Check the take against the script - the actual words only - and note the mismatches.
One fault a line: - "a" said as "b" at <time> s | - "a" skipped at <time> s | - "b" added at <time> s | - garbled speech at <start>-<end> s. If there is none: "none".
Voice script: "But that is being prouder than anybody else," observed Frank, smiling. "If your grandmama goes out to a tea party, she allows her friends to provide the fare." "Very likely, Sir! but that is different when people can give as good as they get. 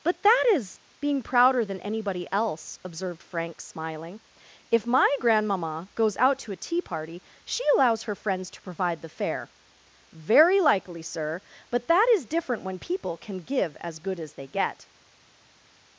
- "your" said as "my" at 4.9 s